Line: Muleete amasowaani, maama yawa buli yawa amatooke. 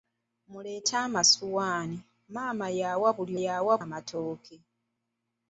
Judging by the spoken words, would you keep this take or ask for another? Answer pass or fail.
pass